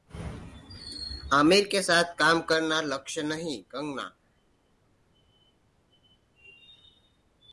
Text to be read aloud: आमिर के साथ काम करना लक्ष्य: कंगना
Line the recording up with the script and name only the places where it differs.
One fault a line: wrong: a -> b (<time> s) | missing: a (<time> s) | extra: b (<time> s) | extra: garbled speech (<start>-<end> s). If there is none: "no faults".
extra: नहीं (3.2 s)